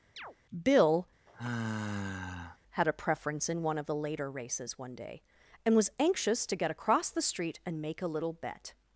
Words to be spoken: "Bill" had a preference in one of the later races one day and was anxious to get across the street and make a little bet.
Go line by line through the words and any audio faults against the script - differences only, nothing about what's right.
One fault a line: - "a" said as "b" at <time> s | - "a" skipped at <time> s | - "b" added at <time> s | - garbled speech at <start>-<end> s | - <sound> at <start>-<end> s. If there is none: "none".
- chirp at 0.2-0.4 s
- sigh at 1.3-2.6 s